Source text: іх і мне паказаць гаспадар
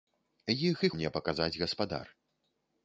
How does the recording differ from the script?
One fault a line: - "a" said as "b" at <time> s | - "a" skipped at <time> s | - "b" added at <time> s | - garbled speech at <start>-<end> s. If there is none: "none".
none